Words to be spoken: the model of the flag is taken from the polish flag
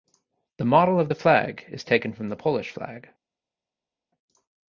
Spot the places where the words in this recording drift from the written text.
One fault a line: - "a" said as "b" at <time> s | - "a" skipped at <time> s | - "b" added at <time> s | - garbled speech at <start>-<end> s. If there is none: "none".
none